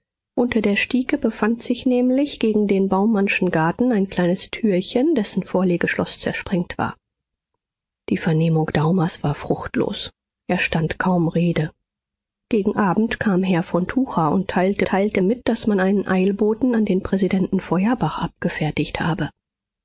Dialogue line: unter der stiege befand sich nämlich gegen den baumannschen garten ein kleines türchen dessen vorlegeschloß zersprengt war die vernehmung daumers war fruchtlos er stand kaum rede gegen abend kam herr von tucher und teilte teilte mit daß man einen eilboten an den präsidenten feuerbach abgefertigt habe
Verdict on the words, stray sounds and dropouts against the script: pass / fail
pass